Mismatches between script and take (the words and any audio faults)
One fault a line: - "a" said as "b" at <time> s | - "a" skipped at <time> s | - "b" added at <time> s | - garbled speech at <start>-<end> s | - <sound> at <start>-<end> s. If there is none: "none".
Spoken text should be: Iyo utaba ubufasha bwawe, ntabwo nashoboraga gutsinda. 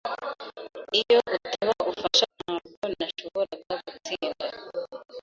- "bwawe" skipped at 2.3 s